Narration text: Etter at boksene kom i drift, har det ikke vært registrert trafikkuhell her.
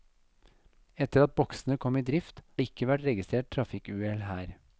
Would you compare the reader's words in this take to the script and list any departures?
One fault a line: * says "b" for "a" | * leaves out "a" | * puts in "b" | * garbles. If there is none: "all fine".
* leaves out "har"